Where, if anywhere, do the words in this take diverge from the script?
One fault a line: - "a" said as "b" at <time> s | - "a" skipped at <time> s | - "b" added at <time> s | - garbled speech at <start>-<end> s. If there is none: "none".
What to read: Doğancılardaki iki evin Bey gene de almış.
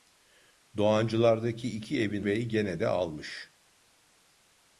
none